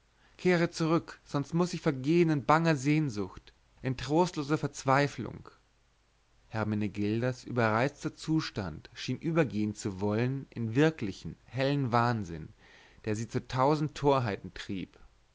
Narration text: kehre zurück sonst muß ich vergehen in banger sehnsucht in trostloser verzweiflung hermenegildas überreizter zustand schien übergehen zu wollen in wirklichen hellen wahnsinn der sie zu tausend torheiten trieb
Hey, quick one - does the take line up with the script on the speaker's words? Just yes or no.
yes